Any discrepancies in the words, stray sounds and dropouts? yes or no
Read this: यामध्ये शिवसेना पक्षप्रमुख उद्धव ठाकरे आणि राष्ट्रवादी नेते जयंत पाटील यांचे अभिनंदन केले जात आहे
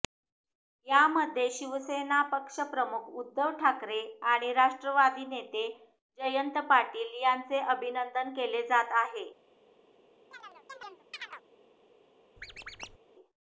yes